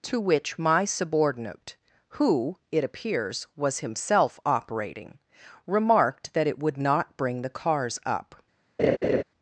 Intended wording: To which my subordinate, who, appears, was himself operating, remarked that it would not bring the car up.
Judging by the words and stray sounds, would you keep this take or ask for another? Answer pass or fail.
fail